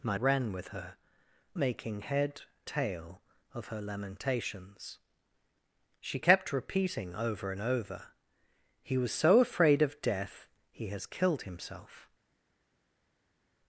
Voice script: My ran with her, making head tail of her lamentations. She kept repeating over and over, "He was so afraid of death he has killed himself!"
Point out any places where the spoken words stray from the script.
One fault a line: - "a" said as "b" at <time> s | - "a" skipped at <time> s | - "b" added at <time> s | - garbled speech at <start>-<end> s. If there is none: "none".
none